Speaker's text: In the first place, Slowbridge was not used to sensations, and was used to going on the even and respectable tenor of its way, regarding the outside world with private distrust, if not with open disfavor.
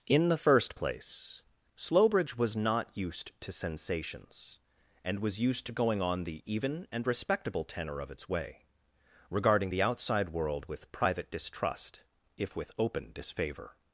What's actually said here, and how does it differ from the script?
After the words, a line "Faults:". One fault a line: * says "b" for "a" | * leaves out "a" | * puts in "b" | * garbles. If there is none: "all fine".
In the first place, Slowbridge was not used to sensations, and was used to going on the even and respectable tenor of its way, regarding the outside world with private distrust, if with open disfavor.
Faults:
* leaves out "not"